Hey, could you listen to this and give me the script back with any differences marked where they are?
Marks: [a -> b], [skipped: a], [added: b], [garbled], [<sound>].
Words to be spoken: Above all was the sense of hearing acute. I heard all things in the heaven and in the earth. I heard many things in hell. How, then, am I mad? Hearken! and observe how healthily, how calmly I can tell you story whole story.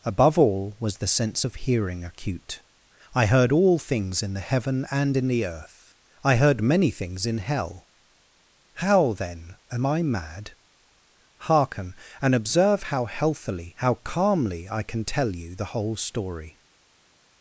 Above all was the sense of hearing acute. I heard all things in the heaven and in the earth. I heard many things in hell. How, then, am I mad? Hearken! and observe how healthily, how calmly I can tell you [story -> the] whole story.